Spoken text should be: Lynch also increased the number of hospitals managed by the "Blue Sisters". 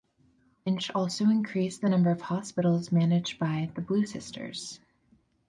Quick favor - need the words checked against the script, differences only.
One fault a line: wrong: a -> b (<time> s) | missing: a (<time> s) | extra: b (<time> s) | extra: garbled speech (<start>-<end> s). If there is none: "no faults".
no faults